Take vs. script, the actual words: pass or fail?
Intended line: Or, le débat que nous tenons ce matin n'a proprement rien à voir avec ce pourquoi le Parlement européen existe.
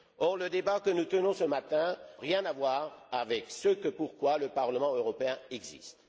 fail